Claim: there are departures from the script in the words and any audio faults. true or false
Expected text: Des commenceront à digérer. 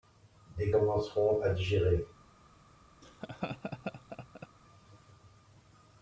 true